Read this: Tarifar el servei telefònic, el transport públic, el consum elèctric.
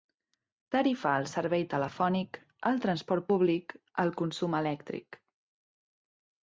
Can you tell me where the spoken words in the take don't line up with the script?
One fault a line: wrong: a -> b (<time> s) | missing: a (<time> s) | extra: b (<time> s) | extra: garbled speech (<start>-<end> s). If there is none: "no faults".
no faults